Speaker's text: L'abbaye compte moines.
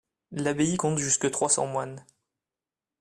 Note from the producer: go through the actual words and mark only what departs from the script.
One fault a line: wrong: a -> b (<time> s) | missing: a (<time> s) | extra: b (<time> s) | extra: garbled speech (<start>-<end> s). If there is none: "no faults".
extra: jusque trois cents (1.0 s)